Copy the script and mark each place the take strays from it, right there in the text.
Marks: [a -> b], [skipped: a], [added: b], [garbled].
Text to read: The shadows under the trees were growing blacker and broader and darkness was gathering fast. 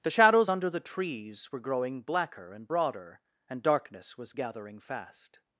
The shadows under the trees were growing blacker and broader and darkness was gathering fast.